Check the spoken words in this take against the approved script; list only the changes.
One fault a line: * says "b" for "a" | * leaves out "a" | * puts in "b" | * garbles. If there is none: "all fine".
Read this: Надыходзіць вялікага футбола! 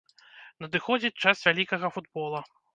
* puts in "час"